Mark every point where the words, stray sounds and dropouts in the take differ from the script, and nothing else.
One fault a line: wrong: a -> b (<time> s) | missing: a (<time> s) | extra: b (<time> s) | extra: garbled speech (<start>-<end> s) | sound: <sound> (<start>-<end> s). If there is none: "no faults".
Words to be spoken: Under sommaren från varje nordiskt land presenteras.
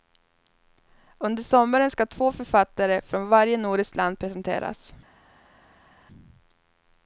extra: ska två författare (1.9 s)